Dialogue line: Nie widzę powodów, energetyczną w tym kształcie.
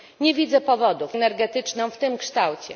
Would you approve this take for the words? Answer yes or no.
yes